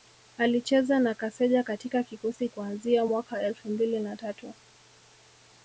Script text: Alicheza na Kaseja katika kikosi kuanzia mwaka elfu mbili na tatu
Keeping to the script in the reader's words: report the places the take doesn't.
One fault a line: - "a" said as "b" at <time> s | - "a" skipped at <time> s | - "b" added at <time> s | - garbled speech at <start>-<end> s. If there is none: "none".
none